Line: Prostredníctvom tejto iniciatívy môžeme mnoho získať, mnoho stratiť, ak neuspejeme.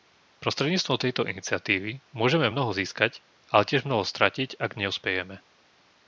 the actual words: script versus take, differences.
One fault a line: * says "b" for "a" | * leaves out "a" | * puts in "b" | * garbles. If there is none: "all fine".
* puts in "ale tiež"